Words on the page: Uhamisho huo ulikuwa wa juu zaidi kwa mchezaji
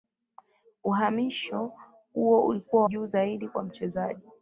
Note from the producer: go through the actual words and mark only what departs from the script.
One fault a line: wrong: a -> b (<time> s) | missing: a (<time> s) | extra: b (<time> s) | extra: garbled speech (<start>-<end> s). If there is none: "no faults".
missing: wa (2.8 s)